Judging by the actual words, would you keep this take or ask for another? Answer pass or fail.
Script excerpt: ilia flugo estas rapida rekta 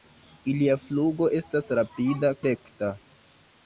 pass